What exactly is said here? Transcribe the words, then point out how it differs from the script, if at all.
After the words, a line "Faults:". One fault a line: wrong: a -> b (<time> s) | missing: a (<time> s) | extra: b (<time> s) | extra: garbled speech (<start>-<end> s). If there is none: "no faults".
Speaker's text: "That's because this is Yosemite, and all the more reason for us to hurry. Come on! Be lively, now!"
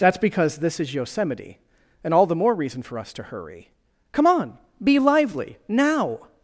"That's because this is Yosemite, and all the more reason for us to hurry. Come on! Be lively, now!"
Faults:
no faults